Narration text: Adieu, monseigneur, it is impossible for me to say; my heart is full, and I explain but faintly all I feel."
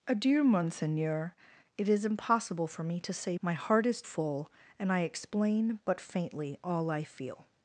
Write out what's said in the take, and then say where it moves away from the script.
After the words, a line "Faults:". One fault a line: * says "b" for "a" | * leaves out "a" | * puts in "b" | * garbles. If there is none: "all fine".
Adieu, monseigneur, it is impossible for me to say; my heart is full, and I explain but faintly all I feel."
Faults:
all fine